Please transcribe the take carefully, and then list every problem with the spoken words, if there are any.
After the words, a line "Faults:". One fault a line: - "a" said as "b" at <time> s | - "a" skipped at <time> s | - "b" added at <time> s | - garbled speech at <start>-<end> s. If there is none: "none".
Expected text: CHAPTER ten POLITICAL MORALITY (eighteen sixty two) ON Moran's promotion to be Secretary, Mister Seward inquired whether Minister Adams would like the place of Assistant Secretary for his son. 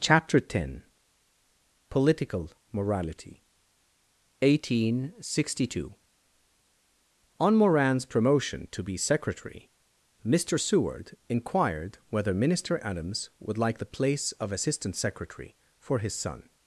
CHAPTER ten POLITICAL MORALITY (eighteen sixty two) ON Moran's promotion to be Secretary, Mister Seward inquired whether Minister Adams would like the place of Assistant Secretary for his son.
Faults:
none